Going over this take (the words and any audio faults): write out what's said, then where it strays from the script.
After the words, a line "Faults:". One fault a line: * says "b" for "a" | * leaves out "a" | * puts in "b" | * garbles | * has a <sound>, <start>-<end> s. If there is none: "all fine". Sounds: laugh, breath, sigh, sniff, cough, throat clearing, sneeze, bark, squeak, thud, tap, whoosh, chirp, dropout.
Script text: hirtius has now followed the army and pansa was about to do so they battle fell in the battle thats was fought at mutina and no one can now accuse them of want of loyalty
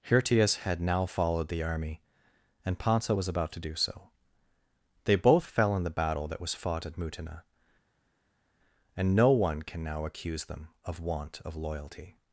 hirtius had now followed the army and pansa was about to do so they both fell in the battle that was fought at mutina and no one can now accuse them of want of loyalty
Faults:
* says "had" for "has"
* says "both" for "battle"
* says "that" for "thats"